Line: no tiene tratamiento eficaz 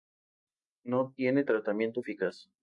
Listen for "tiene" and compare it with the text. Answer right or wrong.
right